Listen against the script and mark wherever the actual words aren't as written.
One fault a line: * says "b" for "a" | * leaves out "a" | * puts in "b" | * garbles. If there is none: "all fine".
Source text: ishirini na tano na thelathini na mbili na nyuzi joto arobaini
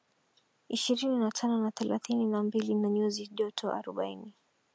all fine